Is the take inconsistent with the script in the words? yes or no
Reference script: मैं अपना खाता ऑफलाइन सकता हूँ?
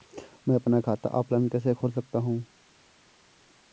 yes